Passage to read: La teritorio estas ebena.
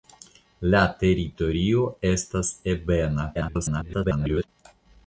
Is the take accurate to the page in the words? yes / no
no